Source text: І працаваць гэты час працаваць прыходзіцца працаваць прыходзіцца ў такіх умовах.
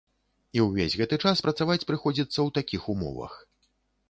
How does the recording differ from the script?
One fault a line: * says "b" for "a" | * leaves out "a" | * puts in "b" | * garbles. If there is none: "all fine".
* says "ўвесь" for "працаваць"
* leaves out "працаваць прыходзіцца"